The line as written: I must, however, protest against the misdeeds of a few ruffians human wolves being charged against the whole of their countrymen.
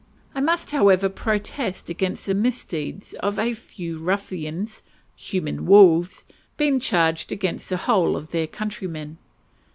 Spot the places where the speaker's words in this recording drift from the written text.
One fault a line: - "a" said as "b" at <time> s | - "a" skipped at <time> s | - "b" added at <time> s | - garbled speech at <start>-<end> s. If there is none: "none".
none